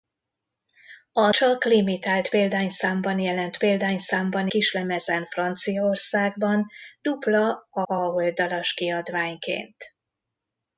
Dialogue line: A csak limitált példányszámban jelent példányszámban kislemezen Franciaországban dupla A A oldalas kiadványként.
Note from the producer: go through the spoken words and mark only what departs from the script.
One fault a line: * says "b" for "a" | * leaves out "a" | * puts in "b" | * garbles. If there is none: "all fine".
all fine